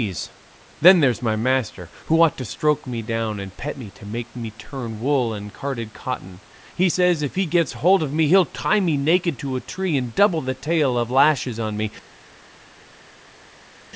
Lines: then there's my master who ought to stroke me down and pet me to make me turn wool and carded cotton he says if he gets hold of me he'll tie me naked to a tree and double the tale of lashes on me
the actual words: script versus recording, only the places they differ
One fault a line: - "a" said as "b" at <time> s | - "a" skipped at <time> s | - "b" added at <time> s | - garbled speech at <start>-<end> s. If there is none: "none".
none